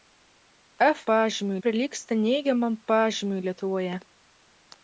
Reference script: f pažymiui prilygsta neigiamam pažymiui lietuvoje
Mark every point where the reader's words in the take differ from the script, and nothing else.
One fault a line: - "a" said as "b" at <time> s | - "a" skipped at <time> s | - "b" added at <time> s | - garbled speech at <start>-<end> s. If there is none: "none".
none